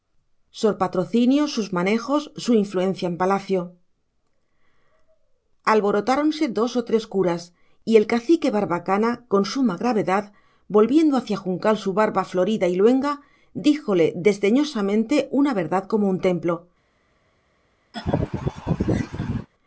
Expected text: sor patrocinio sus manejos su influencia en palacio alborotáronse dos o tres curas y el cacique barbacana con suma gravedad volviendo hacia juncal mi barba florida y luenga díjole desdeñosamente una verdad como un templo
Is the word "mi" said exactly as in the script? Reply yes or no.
no